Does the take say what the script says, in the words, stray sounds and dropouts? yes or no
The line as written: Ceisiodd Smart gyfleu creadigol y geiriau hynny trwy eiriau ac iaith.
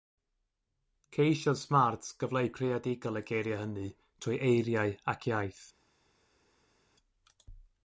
yes